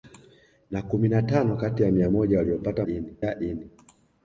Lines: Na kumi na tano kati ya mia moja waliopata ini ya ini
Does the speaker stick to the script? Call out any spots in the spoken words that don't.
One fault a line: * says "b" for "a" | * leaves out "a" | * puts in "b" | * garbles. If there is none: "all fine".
all fine